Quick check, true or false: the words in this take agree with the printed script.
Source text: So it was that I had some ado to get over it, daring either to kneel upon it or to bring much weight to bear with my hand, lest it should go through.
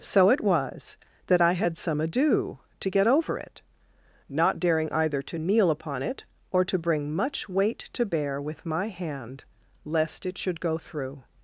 false